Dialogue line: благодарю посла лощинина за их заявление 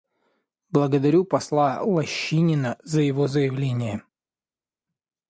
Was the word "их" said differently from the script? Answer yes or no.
yes